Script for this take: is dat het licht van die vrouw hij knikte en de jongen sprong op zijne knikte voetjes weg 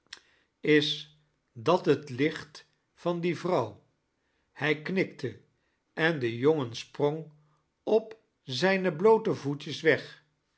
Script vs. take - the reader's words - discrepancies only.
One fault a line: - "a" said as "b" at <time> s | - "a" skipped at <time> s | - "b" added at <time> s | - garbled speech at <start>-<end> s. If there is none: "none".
- "knikte" said as "bloote" at 9.0 s